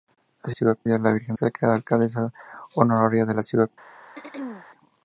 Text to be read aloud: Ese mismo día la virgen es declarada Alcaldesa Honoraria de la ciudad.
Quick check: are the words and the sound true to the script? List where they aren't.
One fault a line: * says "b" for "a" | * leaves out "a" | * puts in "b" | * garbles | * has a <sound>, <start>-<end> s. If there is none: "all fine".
* says "ciudad" for "mismo"
* leaves out "es"
* has a throat clearing, 4.2-4.7 s